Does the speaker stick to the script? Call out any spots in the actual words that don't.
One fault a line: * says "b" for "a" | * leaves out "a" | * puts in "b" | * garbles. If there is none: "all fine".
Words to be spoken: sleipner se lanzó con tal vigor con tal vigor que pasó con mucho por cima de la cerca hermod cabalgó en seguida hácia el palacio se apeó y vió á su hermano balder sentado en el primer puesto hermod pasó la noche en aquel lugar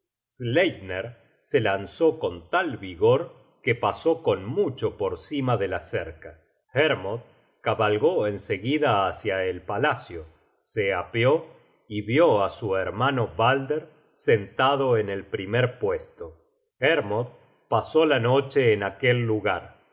* leaves out "con tal vigor"